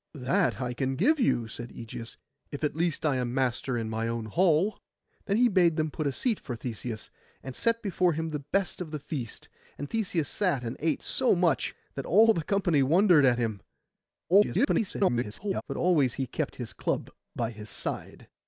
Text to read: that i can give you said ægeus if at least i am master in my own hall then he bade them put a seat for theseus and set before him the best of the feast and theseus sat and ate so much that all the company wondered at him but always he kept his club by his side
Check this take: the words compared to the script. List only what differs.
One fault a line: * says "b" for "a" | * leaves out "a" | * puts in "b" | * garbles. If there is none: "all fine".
* garbles